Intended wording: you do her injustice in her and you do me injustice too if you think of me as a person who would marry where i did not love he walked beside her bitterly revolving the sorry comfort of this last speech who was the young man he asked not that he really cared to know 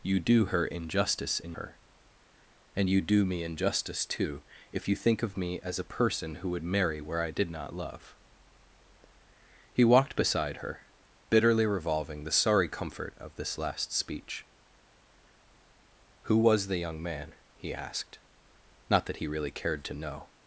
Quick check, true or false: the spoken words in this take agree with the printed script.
true